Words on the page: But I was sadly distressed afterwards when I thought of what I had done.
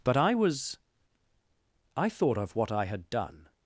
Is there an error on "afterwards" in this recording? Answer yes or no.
yes